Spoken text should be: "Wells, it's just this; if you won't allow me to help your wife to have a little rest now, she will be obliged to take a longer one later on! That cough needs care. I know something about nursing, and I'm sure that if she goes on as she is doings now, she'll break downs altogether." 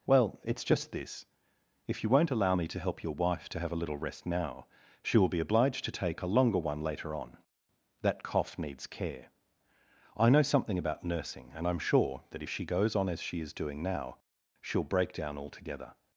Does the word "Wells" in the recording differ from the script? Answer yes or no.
yes